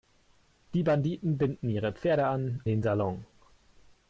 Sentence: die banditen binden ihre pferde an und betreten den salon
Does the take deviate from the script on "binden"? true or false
false